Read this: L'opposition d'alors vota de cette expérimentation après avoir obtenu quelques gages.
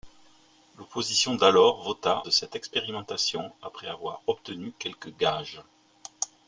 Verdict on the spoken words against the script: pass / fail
pass